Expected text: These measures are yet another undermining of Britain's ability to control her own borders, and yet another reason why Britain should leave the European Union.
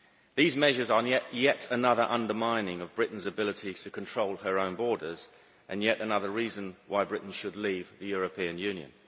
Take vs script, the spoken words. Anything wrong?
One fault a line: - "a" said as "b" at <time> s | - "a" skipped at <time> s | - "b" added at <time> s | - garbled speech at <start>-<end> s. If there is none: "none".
none